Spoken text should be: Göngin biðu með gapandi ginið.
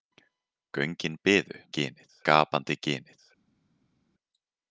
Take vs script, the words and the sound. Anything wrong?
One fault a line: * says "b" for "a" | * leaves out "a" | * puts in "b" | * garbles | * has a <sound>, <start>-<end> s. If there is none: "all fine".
* says "ginið" for "með"